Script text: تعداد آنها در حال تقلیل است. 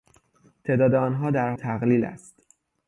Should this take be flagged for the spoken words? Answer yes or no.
yes